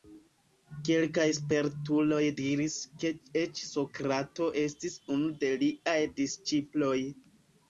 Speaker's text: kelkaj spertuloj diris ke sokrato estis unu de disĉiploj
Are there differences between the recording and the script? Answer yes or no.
yes